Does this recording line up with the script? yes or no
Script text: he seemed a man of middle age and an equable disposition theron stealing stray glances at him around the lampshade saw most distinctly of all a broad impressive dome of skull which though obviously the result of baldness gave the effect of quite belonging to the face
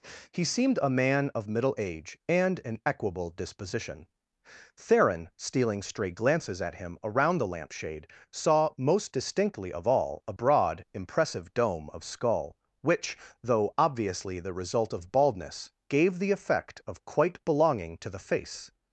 yes